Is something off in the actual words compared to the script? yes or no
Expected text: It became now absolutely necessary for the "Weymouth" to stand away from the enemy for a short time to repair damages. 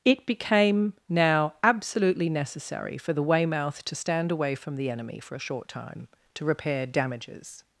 no